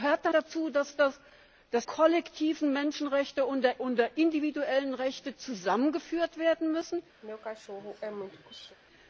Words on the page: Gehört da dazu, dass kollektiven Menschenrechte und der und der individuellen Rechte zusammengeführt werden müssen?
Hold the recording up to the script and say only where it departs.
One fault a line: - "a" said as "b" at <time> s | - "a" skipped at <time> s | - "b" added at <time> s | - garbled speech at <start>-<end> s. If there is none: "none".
none